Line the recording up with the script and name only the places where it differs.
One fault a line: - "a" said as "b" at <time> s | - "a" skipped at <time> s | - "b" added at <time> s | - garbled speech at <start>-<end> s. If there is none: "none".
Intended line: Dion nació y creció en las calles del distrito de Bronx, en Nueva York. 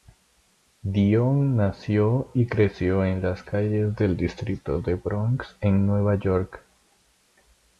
none